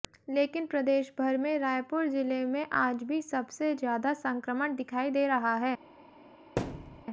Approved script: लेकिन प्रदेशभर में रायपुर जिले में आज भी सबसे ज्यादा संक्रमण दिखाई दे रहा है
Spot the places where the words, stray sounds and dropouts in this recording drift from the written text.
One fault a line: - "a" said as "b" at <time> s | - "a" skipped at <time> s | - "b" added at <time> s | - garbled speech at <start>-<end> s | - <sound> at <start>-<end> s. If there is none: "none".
- thud at 6.6-7.0 s